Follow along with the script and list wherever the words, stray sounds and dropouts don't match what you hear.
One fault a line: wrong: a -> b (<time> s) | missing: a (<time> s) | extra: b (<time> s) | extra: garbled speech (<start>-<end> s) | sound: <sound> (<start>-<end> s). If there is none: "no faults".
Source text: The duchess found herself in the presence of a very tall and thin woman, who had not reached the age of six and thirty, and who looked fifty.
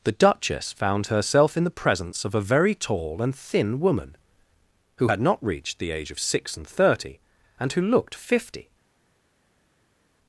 no faults